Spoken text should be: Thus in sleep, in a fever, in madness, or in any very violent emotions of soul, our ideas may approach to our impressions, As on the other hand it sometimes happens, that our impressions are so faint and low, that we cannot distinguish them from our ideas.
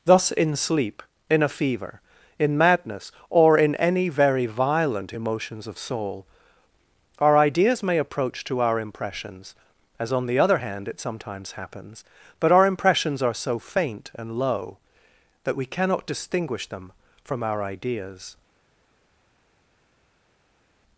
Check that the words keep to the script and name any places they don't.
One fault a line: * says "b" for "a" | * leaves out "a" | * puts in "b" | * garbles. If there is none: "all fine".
* says "but" for "that"